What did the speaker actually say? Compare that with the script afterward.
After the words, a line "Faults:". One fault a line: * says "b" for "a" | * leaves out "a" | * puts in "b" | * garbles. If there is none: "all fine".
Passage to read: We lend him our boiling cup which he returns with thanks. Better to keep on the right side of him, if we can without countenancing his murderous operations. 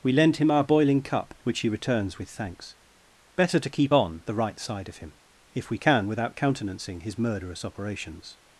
We lend him our boiling cup which he returns with thanks. Better to keep on the right side of him, if we can without countenancing his murderous operations.
Faults:
all fine